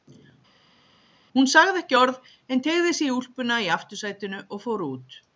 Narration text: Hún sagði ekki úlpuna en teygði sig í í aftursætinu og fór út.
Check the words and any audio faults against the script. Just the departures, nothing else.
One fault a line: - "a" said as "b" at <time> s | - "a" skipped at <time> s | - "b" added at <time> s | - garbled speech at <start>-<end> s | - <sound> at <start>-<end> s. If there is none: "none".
- "úlpuna" said as "orð" at 2.0 s
- "úlpuna" added at 3.2 s